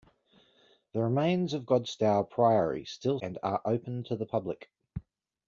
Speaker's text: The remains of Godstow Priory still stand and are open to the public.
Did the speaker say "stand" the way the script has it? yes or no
no